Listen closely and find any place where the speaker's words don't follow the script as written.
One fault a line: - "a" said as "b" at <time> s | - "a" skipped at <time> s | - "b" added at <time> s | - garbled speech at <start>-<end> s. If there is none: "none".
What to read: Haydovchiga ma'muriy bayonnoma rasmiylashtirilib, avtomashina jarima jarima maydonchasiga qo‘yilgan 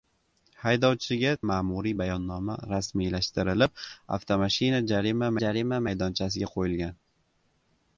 none